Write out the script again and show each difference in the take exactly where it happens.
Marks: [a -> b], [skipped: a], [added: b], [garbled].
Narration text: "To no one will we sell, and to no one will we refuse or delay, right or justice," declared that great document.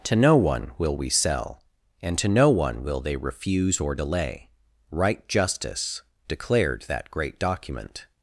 "To no one will we sell, and to no one will [we -> they] refuse or delay, right [skipped: or] justice," declared that great document.